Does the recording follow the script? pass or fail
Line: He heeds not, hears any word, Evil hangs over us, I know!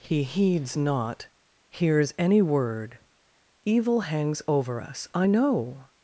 pass